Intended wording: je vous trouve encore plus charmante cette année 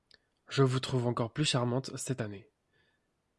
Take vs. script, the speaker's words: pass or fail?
pass